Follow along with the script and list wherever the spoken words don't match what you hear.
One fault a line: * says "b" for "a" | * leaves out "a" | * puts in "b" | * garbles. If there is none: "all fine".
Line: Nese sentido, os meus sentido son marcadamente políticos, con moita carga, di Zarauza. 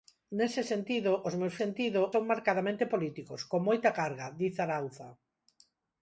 all fine